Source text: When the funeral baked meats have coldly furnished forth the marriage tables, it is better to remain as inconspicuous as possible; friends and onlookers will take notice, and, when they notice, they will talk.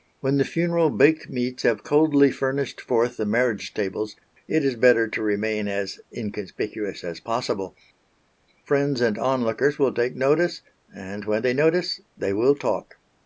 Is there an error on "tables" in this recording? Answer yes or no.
no